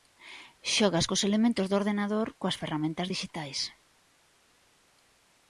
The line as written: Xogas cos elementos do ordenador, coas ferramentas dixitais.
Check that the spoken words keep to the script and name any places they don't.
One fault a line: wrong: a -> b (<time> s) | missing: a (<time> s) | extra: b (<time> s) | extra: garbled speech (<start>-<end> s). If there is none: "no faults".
no faults